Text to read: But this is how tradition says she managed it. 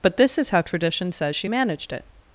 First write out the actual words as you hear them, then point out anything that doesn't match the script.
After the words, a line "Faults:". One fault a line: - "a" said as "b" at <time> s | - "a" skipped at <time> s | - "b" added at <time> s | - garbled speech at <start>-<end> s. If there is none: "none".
But this is how tradition says she managed it.
Faults:
none